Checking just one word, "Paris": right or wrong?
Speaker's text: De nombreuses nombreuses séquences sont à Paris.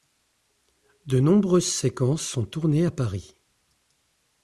right